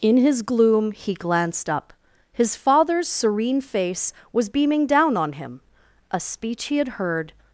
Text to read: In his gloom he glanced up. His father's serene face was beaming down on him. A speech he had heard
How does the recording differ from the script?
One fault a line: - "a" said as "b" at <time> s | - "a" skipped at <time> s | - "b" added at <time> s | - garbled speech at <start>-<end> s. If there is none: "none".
none